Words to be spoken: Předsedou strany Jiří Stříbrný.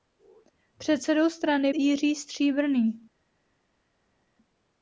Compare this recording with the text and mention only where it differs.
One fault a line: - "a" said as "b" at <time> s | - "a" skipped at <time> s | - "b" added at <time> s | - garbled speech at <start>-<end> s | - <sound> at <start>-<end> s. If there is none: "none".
none